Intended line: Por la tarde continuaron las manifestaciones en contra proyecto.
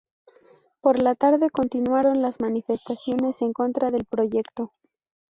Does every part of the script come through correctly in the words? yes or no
no